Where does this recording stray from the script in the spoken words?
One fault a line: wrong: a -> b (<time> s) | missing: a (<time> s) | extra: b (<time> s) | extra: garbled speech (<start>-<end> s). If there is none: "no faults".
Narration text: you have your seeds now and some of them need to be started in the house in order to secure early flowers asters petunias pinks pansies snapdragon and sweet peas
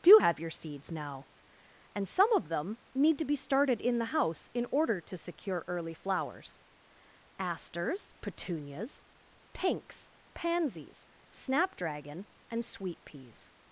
wrong: you -> do (0.0 s)